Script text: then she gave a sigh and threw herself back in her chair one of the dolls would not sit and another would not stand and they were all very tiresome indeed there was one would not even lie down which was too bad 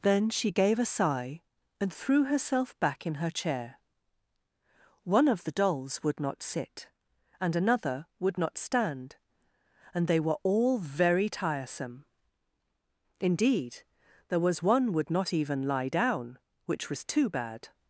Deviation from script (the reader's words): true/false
false